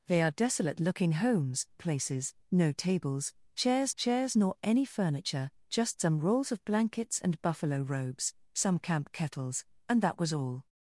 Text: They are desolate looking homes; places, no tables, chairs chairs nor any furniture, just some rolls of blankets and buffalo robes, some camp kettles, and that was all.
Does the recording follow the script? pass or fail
pass